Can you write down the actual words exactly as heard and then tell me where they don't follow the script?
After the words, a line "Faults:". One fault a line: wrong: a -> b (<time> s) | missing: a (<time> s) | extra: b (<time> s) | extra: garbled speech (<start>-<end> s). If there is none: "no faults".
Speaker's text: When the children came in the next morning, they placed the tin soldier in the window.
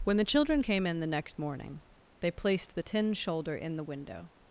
When the children came in the next morning, they placed the tin shoulder in the window.
Faults:
wrong: soldier -> shoulder (3.1 s)